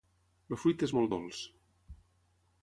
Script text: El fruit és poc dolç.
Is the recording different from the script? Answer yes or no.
yes